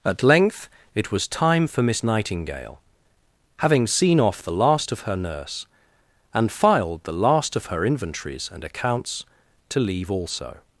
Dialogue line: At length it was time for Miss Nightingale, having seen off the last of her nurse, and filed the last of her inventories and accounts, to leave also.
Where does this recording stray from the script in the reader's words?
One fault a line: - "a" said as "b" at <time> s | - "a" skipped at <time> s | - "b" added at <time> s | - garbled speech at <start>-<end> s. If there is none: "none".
none